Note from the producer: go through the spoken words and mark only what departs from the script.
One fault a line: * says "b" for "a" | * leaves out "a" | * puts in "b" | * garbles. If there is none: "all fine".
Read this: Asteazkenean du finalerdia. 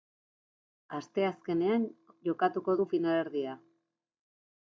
* puts in "jokatuko"